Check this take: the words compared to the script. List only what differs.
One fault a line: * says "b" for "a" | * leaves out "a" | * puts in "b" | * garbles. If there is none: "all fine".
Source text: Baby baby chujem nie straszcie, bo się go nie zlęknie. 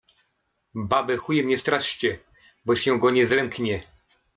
* leaves out "baby"